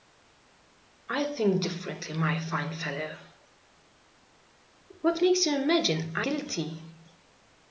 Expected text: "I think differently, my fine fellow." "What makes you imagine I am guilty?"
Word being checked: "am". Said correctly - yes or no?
no